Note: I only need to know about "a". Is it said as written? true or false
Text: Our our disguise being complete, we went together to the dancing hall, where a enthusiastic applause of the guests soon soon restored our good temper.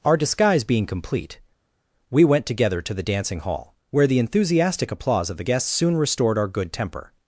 false